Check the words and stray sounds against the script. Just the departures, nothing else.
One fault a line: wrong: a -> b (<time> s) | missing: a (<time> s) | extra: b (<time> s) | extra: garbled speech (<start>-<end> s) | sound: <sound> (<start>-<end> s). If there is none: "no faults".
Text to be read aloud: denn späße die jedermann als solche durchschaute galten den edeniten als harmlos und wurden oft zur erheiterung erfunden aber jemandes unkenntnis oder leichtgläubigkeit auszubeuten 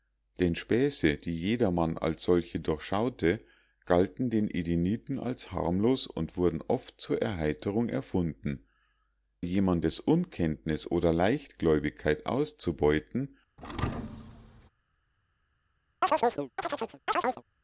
missing: aber (8.7 s)
sound: thud (13.6-14.7 s)
sound: chirp (16.0-17.4 s)